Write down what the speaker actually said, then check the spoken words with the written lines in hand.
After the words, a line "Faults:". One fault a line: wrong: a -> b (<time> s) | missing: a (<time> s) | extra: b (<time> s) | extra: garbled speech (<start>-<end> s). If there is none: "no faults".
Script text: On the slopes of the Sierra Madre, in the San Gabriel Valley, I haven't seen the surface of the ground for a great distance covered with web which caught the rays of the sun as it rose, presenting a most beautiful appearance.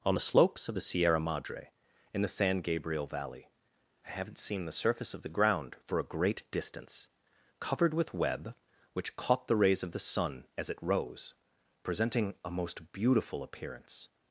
On the slopes of the Sierra Madre, in the San Gabriel Valley, I haven't seen the surface of the ground for a great distance covered with web which caught the rays of the sun as it rose, presenting a most beautiful appearance.
Faults:
no faults